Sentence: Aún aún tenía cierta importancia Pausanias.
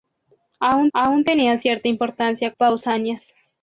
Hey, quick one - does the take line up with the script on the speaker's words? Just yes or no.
yes